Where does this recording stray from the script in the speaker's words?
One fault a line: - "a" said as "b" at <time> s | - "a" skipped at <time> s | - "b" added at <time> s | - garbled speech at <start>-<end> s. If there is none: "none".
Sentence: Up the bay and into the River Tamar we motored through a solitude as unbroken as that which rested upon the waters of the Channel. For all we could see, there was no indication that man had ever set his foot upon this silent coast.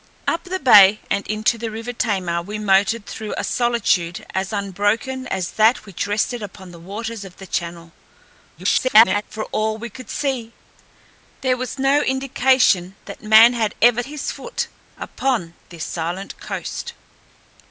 - garbled speech at 8.5-9.2 s
- "set" skipped at 14.0 s